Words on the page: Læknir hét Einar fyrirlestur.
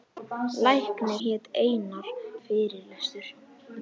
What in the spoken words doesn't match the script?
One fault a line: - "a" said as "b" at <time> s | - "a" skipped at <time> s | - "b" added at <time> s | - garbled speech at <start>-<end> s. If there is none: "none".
none